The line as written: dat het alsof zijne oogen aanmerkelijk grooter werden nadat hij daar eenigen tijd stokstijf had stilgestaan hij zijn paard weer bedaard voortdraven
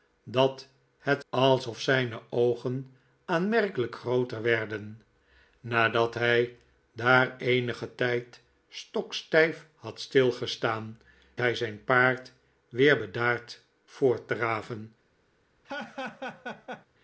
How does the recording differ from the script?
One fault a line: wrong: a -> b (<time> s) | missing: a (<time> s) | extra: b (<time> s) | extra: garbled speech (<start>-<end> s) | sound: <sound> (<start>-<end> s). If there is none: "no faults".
sound: laugh (15.6-16.9 s)